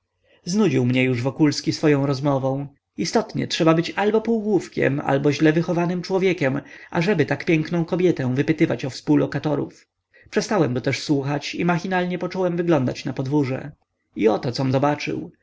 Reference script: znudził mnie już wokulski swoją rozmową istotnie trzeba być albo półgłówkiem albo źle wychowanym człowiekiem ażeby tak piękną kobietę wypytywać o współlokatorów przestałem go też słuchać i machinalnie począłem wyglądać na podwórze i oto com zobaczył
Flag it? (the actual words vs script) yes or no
no